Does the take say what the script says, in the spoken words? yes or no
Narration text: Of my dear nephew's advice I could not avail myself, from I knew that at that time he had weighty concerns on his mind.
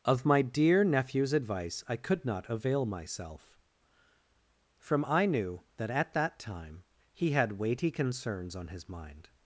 yes